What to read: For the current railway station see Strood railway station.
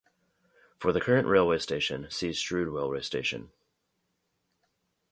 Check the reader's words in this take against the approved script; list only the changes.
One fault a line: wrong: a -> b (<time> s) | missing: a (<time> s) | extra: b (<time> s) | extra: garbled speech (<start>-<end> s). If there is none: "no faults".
no faults